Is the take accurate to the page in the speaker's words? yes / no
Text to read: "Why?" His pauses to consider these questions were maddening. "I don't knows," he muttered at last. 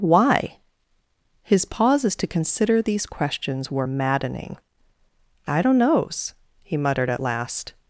yes